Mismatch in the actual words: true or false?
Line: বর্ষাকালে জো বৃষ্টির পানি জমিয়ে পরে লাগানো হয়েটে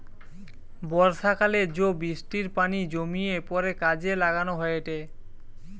true